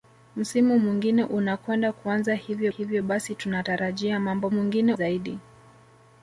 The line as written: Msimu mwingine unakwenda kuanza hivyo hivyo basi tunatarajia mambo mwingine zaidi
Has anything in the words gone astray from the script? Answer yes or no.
no